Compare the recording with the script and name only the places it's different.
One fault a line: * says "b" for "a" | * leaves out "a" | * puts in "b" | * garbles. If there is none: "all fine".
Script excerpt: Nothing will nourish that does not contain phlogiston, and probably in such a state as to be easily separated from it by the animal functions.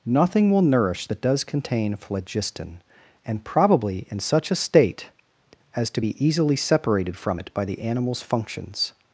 * leaves out "not"
* says "animals" for "animal"